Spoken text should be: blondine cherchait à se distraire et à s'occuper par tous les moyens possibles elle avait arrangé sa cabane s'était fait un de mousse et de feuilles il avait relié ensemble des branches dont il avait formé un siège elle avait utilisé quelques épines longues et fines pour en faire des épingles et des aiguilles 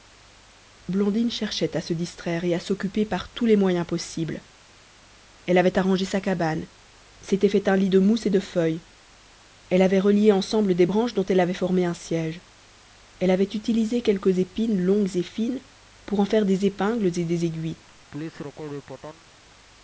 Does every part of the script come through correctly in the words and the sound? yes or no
no